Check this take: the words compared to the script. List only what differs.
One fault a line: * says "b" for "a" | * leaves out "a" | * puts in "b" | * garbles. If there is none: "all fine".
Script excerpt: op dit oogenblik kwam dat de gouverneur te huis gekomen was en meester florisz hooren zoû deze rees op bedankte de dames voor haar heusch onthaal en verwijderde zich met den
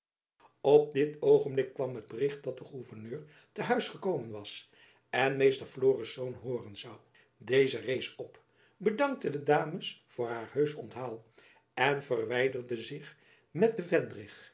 * puts in "het bericht"